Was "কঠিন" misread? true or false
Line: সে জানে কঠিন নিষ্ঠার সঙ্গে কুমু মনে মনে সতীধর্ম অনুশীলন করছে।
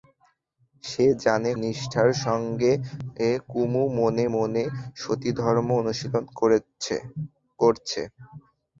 true